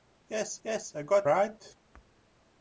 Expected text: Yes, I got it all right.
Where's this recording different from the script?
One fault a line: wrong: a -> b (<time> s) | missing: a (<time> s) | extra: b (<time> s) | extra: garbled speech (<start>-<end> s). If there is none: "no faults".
extra: yes (0.6 s)
missing: it all (1.3 s)